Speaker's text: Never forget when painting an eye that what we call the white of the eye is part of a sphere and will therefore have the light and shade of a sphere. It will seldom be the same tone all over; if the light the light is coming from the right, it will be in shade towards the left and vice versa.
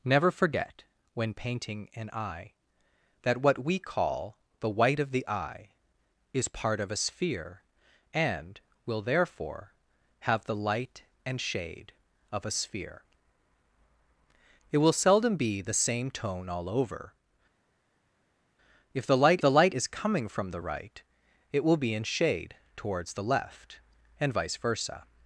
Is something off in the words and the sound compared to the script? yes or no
no